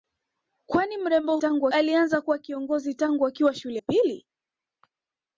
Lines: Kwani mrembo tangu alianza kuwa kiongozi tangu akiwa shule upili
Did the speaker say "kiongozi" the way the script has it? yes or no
yes